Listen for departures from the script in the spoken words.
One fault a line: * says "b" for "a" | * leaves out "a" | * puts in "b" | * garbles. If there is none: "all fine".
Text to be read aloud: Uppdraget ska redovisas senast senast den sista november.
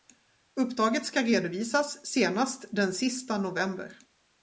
* leaves out "senast"